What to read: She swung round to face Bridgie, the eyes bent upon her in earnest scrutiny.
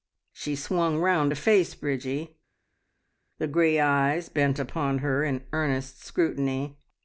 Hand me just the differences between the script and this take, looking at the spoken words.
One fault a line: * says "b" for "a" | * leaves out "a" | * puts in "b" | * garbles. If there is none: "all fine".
* puts in "grey"